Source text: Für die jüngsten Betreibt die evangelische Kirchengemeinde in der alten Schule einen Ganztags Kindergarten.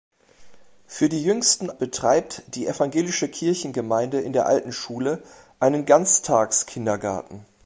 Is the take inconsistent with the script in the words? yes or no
no